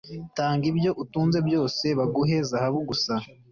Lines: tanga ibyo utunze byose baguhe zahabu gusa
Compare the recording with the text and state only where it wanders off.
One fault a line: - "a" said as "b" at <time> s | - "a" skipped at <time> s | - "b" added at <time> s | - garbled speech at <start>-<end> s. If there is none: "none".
none